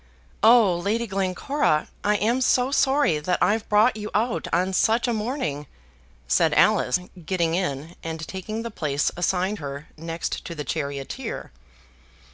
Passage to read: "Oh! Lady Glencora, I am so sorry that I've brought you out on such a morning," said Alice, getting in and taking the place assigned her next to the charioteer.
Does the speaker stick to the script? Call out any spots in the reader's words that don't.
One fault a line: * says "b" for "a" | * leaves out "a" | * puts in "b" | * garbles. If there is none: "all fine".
all fine